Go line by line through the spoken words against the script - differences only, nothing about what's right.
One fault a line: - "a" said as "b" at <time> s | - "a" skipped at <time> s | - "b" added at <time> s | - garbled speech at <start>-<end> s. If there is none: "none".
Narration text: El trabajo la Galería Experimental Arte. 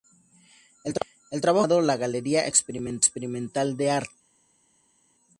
- "fue llamado" added at 1.7 s
- "de" added at 3.8 s